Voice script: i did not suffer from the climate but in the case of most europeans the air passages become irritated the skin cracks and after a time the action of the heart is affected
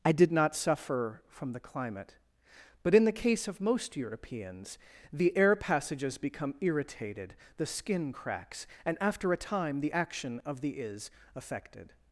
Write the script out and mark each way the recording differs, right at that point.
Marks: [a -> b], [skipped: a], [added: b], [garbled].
i did not suffer from the climate but in the case of most europeans the air passages become irritated the skin cracks and after a time the action of the [skipped: heart] is affected